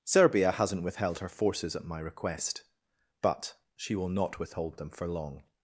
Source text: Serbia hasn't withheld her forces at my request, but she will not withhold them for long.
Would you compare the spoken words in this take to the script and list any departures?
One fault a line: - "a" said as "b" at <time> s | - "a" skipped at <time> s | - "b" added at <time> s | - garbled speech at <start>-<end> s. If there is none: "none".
none